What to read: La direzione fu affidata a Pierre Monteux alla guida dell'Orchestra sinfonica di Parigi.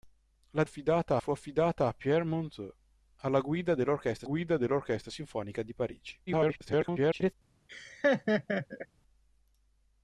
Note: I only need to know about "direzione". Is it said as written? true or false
false